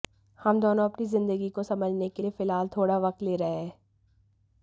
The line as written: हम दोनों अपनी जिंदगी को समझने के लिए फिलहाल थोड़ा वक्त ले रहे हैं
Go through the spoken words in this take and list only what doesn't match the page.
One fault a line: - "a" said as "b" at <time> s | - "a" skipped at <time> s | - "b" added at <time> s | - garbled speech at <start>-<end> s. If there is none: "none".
none